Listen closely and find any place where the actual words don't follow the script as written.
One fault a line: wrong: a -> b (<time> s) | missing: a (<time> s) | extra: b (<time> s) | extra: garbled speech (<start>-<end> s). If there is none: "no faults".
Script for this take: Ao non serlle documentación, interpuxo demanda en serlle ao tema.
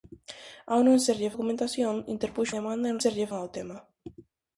no faults